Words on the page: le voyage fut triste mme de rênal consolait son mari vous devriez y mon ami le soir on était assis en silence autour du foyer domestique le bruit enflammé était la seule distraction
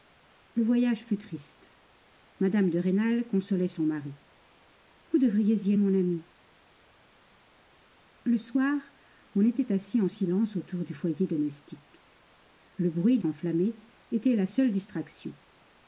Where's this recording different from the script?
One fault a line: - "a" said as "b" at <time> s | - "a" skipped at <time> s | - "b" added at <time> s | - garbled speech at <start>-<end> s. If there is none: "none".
none